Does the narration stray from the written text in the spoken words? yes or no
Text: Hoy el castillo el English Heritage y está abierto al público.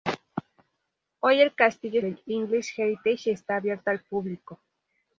no